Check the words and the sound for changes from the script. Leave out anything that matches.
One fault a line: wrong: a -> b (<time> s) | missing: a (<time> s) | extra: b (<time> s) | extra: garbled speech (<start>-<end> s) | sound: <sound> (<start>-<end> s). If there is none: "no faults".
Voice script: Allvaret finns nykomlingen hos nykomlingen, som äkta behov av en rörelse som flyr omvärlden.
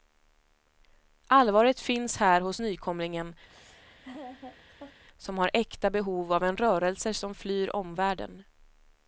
wrong: nykomlingen -> här (2.2 s)
sound: laugh (3.5-5.0 s)
extra: har (5.4 s)